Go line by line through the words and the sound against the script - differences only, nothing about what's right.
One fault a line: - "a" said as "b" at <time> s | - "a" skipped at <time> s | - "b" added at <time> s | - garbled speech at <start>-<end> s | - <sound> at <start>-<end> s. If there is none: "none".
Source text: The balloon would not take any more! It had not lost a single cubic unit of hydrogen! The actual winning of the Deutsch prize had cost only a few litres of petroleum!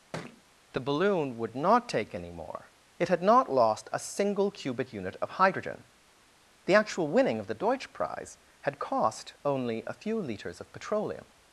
- thud at 0.1-0.4 s